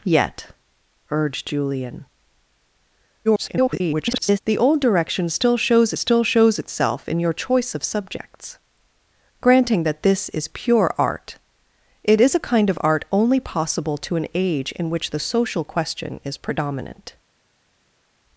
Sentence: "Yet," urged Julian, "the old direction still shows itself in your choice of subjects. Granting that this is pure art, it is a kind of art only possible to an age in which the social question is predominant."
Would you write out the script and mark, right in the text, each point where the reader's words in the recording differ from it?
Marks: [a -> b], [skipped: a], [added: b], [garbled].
"Yet," urged Julian, [garbled] "the old direction still shows [added: still shows] itself in your choice of subjects. Granting that this is pure art, it is a kind of art only possible to an age in which the social question is predominant."